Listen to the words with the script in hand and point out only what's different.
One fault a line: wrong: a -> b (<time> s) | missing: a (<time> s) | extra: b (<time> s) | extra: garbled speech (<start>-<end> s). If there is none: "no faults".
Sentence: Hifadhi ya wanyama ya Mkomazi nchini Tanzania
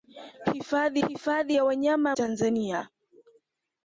extra: hifadhi (1.1 s)
missing: Mkomazi nchini (2.2 s)